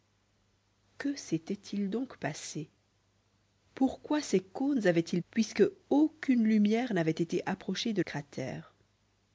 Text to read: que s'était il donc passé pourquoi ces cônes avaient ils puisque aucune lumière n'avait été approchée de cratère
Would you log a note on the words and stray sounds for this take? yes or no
no